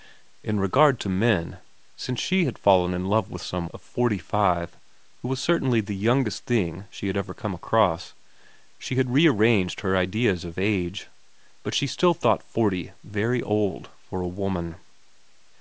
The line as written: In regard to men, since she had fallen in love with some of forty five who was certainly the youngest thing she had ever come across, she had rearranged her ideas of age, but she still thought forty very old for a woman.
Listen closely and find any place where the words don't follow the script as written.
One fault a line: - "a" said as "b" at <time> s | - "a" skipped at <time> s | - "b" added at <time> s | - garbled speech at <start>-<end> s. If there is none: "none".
none